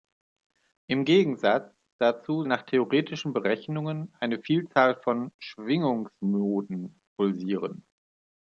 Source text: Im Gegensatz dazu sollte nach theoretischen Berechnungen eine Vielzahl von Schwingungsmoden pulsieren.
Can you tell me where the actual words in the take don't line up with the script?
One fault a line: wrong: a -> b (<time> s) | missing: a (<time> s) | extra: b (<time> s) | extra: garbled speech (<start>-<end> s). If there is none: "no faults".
missing: sollte (2.4 s)